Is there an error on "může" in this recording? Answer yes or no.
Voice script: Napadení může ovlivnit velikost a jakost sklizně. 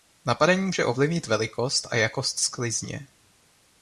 no